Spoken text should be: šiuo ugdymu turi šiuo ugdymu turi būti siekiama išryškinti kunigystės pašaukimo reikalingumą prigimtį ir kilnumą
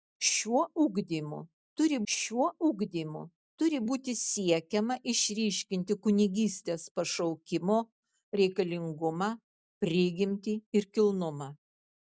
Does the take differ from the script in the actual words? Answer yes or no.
no